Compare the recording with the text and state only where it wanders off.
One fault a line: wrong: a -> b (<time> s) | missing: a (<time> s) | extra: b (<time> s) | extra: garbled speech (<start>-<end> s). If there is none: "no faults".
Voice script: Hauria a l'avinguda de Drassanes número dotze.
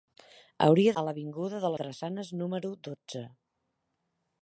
no faults